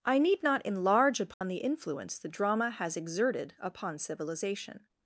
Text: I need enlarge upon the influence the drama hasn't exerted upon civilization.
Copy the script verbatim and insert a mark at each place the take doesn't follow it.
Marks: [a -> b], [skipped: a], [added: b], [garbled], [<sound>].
I need [added: not] enlarge upon [dropout] the influence the drama [hasn't -> has] exerted upon civilization.